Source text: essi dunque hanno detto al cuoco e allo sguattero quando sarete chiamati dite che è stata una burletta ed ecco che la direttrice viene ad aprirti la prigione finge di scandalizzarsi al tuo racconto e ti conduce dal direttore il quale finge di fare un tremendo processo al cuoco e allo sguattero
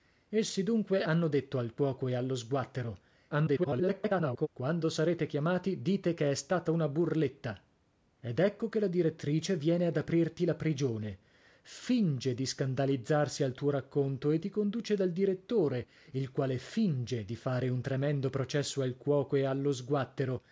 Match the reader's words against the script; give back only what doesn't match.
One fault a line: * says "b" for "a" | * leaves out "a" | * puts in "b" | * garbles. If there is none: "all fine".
* garbles